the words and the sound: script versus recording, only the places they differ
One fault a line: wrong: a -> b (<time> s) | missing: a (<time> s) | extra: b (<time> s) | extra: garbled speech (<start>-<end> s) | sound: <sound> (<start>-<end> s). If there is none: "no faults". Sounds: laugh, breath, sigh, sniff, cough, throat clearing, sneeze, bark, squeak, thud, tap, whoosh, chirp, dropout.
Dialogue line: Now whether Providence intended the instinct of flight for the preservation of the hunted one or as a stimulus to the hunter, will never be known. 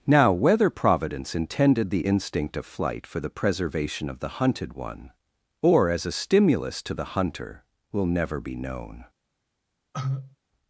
sound: cough (9.9-10.4 s)